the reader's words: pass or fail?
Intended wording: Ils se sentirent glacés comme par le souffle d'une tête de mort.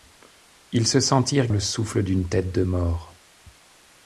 fail